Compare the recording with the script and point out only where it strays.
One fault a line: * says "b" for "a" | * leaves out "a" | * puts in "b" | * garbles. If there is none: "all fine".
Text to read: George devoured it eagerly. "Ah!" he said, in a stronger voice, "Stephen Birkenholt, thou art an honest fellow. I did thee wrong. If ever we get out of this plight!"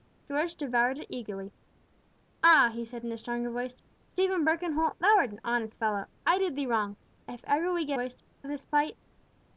* says "voice" for "out"